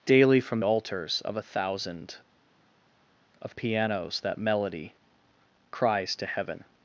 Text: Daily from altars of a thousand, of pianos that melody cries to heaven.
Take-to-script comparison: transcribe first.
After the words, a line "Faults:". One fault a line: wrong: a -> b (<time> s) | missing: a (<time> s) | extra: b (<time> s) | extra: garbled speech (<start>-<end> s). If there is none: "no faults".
Daily from altars of a thousand, of pianos that melody cries to heaven.
Faults:
no faults